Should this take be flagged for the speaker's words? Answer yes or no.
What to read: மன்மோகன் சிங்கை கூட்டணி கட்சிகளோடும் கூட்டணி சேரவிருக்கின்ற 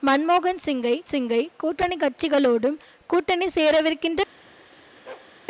yes